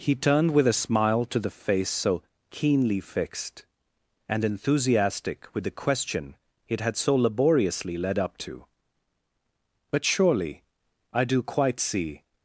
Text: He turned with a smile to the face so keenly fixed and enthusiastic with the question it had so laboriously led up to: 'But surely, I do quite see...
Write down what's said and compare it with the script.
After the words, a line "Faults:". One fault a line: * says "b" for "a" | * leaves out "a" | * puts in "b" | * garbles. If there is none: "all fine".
He turned with a smile to the face so keenly fixed and enthusiastic with the question it had so laboriously led up to: 'But surely, I do quite see...
Faults:
all fine